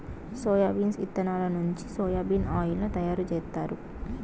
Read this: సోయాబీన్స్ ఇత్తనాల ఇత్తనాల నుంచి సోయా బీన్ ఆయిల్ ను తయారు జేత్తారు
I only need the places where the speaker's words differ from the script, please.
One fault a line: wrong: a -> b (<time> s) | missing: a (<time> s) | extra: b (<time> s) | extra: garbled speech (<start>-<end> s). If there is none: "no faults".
missing: ఇత్తనాల (1.4 s)